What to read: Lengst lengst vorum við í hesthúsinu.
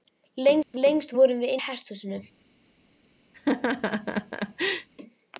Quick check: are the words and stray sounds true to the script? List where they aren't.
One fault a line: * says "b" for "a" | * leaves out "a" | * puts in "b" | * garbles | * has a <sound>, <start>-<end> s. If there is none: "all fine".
* has a dropout, 0.6-0.7 s
* has a laugh, 3.3-4.9 s